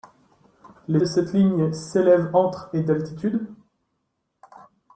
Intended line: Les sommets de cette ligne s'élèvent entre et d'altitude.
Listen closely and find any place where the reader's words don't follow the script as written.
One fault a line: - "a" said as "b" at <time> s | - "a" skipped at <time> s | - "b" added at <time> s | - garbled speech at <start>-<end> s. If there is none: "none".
- "sommets" skipped at 1.0 s